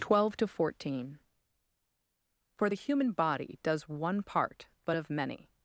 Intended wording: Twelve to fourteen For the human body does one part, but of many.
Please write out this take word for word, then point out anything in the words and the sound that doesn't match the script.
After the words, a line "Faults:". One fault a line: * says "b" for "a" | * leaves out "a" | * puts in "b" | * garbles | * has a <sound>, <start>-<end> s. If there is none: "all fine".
Twelve to fourteen For the human body does one part, but of many.
Faults:
all fine